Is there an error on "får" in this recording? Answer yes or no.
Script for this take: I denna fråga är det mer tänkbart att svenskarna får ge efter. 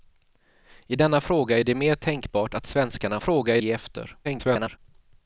yes